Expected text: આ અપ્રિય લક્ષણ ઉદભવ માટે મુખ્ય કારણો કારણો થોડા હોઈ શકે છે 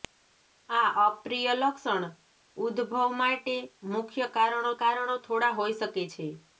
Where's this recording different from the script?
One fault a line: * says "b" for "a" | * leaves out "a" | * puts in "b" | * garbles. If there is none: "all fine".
all fine